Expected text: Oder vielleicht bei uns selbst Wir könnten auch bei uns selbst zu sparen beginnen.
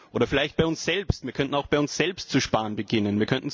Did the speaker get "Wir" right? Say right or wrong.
right